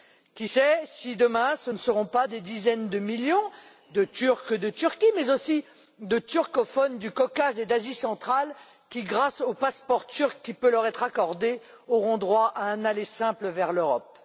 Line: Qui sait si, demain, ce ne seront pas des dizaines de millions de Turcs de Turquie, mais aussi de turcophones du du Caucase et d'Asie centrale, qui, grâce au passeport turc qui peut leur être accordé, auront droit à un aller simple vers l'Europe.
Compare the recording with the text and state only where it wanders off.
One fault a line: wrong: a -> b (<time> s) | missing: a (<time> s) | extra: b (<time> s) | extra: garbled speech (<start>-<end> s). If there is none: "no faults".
missing: du (7.1 s)